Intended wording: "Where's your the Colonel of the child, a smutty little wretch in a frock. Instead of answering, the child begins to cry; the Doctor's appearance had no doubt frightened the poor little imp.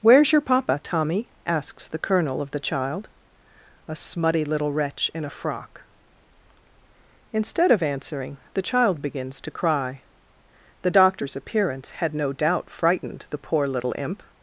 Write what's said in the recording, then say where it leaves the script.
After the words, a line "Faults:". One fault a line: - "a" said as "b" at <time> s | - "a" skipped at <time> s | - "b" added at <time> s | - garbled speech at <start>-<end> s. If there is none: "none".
"Where's your papa, Tommy?" asks the Colonel of the child, a smutty little wretch in a frock. Instead of answering, the child begins to cry; the Doctor's appearance had no doubt frightened the poor little imp.
Faults:
- "papa Tommy asks" added at 0.4 s